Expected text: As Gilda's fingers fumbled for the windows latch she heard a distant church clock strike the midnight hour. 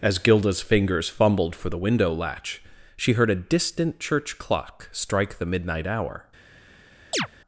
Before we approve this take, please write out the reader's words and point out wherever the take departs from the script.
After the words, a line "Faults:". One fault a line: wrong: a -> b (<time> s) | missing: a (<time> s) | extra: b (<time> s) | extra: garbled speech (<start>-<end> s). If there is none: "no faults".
As Gilda's fingers fumbled for the window latch she heard a distant church clock strike the midnight hour.
Faults:
wrong: windows -> window (1.8 s)